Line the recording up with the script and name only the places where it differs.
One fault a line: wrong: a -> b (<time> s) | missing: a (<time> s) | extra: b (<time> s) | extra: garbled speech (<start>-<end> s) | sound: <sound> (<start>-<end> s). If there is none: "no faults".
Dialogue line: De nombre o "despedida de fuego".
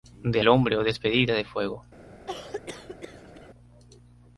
sound: cough (2.3-3.5 s)